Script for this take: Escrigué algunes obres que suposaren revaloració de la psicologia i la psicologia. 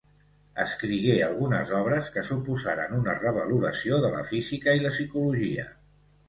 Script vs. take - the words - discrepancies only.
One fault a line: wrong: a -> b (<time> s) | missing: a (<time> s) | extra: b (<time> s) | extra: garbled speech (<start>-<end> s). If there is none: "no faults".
extra: una (3.0 s)
wrong: psicologia -> física (4.3 s)